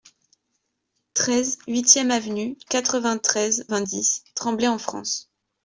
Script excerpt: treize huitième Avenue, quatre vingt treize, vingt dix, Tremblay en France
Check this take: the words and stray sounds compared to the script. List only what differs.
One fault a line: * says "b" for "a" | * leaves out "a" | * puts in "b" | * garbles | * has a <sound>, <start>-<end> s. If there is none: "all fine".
all fine